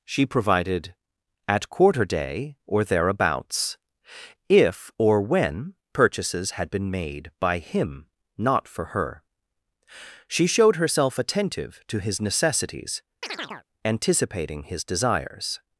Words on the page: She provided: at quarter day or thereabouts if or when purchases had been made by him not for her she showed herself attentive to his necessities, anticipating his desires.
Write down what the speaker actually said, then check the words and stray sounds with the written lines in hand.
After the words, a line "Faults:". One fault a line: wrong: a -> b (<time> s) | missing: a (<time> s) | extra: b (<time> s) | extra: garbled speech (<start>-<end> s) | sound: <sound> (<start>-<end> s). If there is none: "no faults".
She provided: at quarter day or thereabouts if or when purchases had been made by him not for her she showed herself attentive to his necessities, anticipating his desires.
Faults:
sound: chirp (13.2-13.6 s)